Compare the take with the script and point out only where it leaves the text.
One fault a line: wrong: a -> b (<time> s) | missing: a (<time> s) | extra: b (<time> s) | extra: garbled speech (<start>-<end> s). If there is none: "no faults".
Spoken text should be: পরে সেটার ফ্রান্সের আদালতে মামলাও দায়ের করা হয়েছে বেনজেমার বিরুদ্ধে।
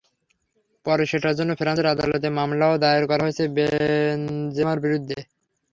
extra: জন্য (1.4 s)